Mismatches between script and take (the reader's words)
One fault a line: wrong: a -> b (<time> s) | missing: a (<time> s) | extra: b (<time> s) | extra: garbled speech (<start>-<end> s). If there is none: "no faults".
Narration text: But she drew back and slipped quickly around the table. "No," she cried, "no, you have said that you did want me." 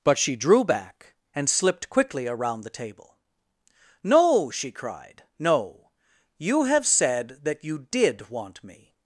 no faults